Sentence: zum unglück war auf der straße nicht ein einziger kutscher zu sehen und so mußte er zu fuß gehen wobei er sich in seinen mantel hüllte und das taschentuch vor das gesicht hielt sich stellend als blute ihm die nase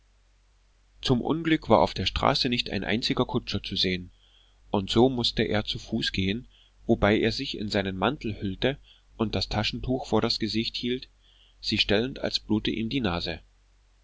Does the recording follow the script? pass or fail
pass